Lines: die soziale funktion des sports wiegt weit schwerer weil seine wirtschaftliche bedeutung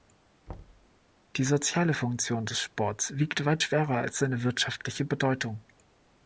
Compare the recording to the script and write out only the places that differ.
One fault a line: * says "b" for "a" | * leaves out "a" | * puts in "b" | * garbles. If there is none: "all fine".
* says "als" for "weil"